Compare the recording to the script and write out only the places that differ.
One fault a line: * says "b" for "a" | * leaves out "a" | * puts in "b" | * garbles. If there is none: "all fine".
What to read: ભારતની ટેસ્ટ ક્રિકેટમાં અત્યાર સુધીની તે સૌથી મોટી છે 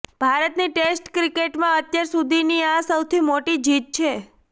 * says "આ" for "તે"
* puts in "જીત"